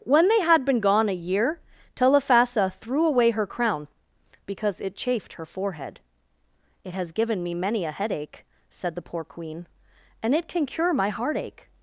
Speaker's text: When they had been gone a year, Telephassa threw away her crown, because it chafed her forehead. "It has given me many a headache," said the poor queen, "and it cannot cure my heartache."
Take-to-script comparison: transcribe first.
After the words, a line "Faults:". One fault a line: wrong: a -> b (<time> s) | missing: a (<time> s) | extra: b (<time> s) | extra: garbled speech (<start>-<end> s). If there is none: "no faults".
When they had been gone a year, Telephassa threw away her crown, because it chafed her forehead. "It has given me many a headache," said the poor queen, "and it can cure my heartache."
Faults:
wrong: cannot -> can (10.5 s)